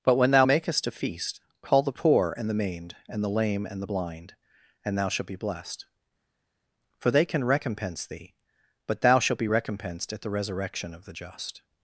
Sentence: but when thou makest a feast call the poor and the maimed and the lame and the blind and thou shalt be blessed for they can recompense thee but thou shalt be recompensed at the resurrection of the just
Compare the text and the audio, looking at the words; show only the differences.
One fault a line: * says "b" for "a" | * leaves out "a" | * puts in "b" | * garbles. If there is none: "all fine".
all fine